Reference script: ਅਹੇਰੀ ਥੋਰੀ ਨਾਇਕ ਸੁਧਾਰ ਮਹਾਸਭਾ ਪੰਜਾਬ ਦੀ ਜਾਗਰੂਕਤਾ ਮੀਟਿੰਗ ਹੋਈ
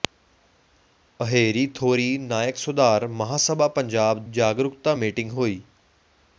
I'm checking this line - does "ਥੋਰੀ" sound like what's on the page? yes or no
yes